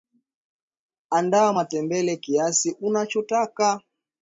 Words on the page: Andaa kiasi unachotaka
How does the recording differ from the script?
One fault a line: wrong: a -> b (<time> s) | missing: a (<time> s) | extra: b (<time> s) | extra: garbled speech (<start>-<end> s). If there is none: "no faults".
extra: matembele (1.5 s)